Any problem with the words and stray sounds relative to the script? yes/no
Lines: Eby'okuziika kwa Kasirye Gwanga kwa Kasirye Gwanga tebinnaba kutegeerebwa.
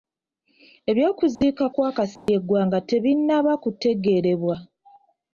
yes